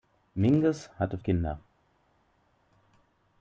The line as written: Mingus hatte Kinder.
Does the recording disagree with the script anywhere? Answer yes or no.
no